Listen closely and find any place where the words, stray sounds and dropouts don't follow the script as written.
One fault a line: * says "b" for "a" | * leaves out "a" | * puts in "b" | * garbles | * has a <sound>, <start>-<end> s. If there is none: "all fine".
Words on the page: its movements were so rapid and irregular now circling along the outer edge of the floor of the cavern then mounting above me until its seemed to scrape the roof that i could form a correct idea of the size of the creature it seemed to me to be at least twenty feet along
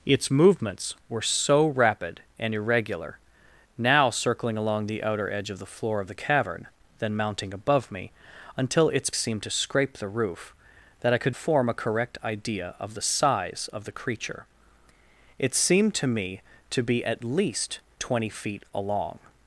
all fine